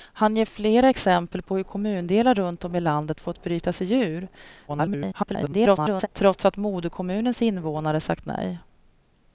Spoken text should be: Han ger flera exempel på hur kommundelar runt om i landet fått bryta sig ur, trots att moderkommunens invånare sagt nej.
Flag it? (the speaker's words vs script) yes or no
yes